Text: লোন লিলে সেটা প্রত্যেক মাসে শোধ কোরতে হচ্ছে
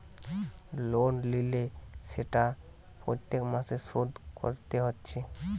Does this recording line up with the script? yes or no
yes